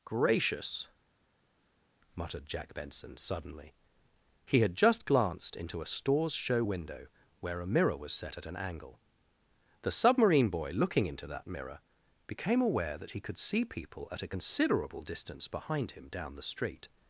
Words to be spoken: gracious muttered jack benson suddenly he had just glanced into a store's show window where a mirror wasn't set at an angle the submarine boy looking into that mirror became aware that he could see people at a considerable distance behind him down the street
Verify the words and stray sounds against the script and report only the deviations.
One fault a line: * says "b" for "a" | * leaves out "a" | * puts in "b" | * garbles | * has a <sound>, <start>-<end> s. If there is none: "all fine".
* says "was" for "wasn't"